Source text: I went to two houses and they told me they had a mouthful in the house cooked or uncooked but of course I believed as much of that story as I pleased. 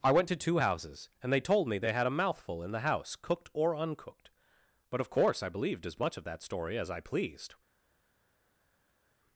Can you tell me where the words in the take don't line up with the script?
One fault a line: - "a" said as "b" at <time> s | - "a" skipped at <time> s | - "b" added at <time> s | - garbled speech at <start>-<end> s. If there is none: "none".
none